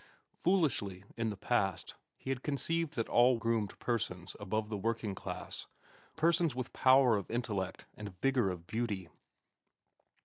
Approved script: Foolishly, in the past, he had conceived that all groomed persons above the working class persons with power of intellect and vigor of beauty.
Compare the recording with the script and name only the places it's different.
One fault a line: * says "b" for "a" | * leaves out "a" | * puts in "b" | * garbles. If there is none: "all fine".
all fine